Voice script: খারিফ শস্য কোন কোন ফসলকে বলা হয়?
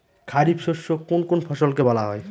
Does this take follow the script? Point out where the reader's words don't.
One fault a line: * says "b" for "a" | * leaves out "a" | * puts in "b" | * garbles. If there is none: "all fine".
all fine